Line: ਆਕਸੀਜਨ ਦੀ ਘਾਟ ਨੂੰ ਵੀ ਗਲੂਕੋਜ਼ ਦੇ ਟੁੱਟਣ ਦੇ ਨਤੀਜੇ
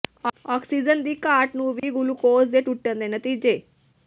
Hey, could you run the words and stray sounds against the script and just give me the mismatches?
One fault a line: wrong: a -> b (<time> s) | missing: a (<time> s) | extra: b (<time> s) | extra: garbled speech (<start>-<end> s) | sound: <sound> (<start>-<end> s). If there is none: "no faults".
sound: dropout (1.8-1.8 s)